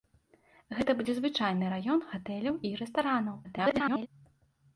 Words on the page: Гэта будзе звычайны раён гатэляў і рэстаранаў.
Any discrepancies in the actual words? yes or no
yes